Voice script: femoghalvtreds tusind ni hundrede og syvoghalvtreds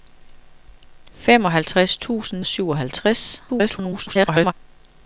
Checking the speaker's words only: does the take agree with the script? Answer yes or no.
no